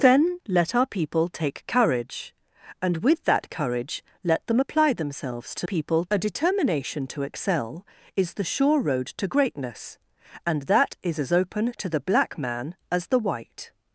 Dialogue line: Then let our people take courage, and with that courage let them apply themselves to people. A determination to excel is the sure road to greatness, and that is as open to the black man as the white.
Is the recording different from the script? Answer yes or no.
no